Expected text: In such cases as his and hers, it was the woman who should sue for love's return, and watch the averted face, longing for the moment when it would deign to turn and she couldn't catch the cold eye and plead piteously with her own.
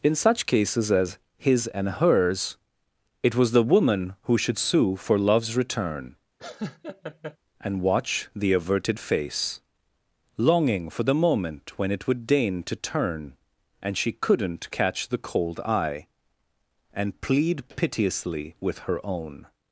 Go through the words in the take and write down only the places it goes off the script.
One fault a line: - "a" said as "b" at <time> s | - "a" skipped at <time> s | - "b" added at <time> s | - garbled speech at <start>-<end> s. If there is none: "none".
none